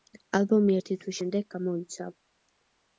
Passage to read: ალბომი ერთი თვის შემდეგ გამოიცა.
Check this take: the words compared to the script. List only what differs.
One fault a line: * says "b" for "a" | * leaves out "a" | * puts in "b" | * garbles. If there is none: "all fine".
all fine